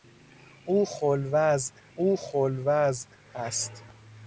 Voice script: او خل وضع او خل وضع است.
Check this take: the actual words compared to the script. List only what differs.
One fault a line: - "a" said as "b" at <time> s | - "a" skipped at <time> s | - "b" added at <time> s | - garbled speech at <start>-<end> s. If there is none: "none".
none